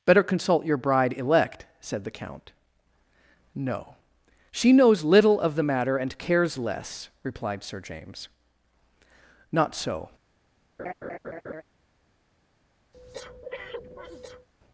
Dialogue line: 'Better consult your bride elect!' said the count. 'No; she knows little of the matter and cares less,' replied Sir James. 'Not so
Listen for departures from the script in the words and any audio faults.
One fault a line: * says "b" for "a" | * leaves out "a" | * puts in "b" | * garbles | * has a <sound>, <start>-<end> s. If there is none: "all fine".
* has a laugh, 10.8-11.6 s
* has a breath, 12.9-14.5 s